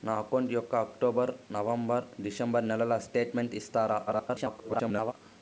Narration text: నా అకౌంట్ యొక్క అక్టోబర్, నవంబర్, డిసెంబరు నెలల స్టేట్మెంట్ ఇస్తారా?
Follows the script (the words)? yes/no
no